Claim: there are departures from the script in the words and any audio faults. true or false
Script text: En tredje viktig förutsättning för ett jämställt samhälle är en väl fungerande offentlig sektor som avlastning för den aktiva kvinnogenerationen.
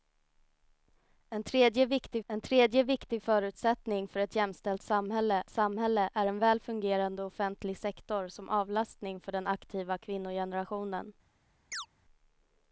true